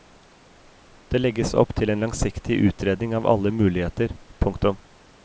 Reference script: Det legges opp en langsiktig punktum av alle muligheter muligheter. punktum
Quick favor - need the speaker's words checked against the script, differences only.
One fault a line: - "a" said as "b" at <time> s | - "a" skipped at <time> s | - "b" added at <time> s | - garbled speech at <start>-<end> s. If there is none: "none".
- "til" added at 1.8 s
- "punktum" said as "utredning" at 2.7 s
- "muligheter" skipped at 4.2 s